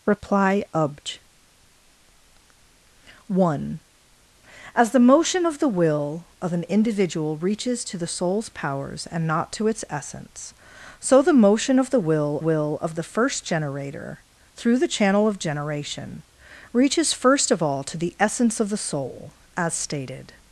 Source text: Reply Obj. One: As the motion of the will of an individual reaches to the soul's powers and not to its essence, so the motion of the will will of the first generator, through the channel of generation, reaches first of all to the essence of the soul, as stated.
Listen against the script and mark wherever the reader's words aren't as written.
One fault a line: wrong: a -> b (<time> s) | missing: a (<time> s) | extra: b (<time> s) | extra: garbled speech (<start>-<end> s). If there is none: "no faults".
no faults